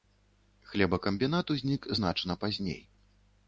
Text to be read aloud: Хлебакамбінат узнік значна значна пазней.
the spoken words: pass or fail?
fail